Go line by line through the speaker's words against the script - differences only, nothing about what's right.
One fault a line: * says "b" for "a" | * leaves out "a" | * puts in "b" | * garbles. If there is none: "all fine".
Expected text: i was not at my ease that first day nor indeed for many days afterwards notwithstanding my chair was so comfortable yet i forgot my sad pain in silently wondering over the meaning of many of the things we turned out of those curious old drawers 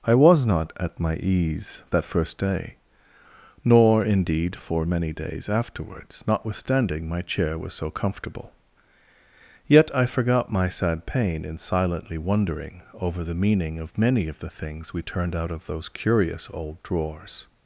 all fine